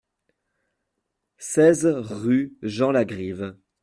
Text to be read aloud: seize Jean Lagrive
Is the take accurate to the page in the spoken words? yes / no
no